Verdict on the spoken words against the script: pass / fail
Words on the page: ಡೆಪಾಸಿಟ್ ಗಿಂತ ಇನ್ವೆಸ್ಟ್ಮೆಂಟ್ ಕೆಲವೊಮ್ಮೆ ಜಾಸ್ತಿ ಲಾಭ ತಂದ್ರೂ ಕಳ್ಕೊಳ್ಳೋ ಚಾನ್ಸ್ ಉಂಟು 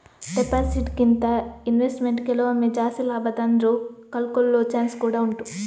fail